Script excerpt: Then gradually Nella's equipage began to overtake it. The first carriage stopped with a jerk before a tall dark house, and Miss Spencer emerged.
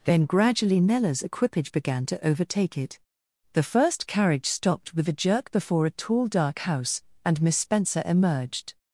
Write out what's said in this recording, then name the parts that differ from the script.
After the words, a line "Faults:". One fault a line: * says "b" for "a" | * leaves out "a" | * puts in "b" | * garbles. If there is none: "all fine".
Then gradually Nella's equipage began to overtake it. The first carriage stopped with a jerk before a tall dark house, and Miss Spencer emerged.
Faults:
all fine